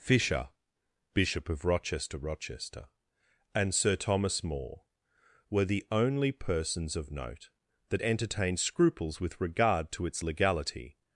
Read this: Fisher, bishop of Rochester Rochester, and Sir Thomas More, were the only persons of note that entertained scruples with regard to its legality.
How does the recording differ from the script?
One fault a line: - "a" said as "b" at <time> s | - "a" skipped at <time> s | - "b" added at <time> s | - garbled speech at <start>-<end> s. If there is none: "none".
none